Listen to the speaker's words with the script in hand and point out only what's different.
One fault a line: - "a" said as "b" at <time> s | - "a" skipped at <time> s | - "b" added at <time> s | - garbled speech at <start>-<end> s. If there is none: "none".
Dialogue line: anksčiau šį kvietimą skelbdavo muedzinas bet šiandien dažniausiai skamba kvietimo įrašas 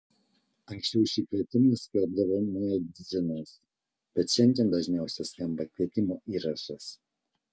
none